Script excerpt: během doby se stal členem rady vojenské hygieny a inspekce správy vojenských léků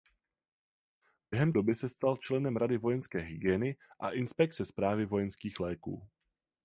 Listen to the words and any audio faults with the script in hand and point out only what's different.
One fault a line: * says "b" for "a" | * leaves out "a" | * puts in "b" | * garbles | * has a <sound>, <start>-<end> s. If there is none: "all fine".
all fine